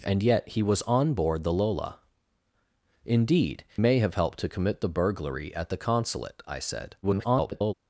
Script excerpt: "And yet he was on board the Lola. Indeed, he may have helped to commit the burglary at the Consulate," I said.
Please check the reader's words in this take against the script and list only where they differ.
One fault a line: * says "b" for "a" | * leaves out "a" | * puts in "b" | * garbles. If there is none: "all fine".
* leaves out "he"
* garbles